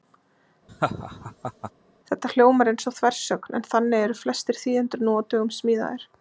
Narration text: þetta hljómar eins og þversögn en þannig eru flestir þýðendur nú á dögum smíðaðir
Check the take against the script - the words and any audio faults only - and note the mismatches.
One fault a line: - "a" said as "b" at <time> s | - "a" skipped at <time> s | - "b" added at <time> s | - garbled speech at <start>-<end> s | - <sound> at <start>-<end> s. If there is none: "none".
- laugh at 0.7-1.7 s